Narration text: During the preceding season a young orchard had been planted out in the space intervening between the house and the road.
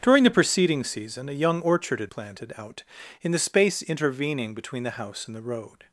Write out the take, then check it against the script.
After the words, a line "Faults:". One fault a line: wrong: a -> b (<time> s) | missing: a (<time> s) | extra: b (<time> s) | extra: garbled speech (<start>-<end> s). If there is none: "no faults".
During the preceding season a young orchard had planted out in the space intervening between the house and the road.
Faults:
missing: been (2.1 s)